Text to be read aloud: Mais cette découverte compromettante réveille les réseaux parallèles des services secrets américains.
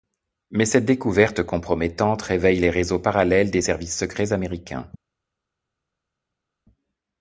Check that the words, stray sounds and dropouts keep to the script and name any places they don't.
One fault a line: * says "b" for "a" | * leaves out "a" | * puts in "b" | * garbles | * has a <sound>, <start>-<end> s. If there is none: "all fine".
all fine